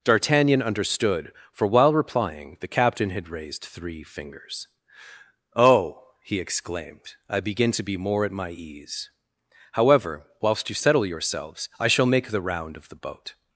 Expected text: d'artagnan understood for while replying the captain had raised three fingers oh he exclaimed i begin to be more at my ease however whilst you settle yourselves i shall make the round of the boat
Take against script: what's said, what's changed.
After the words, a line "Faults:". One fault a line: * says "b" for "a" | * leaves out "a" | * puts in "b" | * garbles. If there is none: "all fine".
d'artagnan understood for while replying the captain had raised three fingers oh he exclaimed i begin to be more at my ease however whilst you settle yourselves i shall make the round of the boat
Faults:
all fine